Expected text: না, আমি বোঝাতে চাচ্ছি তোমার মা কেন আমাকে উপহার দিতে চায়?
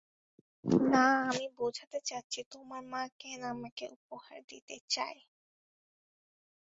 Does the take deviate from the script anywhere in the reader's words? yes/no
no